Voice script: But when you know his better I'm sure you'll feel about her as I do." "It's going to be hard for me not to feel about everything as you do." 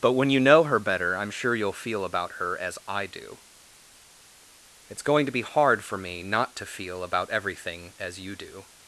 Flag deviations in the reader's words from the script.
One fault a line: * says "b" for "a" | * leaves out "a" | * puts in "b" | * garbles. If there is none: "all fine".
* says "her" for "his"